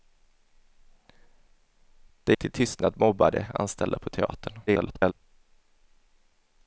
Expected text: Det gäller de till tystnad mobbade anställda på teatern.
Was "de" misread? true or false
true